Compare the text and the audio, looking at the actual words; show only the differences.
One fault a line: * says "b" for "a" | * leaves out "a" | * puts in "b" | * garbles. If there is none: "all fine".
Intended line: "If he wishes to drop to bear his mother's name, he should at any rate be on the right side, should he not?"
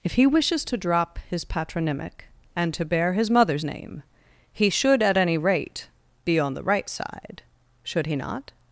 * puts in "his patronymic and"